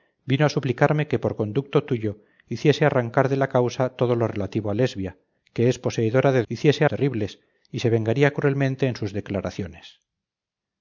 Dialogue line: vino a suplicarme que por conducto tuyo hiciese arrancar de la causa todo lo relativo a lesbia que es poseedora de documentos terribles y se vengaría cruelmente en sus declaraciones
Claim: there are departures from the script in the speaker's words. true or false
true